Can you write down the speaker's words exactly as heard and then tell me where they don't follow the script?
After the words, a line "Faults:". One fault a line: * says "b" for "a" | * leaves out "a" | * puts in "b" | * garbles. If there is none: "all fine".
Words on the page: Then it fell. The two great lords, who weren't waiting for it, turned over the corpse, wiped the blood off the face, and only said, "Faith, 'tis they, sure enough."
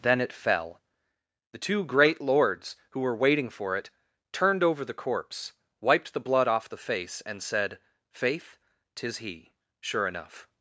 Then it fell. The two great lords, who were waiting for it, turned over the corpse, wiped the blood off the face, and said, "Faith, 'tis he, sure enough."
Faults:
* says "were" for "weren't"
* leaves out "only"
* says "he" for "they"